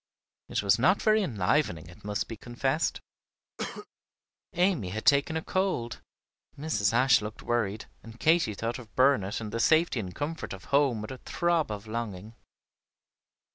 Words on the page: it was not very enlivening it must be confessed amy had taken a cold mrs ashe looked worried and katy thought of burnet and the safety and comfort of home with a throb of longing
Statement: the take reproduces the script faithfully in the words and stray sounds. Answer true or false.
false